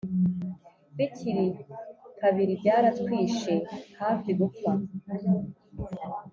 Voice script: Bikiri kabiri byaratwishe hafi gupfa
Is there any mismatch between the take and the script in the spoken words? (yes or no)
no